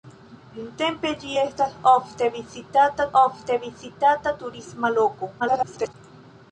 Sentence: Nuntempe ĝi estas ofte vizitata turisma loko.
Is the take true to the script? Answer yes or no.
no